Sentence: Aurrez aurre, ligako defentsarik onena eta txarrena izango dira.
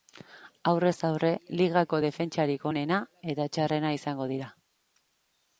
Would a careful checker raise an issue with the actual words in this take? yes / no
no